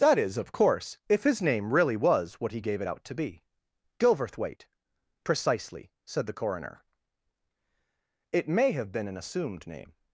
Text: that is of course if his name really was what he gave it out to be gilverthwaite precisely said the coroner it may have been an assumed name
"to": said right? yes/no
yes